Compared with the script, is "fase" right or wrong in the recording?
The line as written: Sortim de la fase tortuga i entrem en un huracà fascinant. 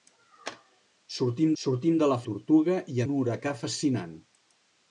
wrong